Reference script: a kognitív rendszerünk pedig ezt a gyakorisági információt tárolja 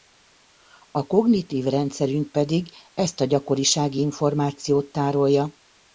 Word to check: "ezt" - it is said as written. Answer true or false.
true